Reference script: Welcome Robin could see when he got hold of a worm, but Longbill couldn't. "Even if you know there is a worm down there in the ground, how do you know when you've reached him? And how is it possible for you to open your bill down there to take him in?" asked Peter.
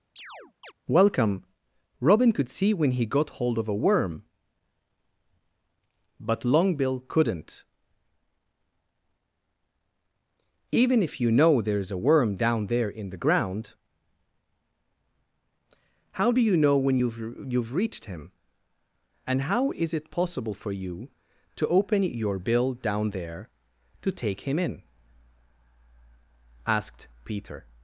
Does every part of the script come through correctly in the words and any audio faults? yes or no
no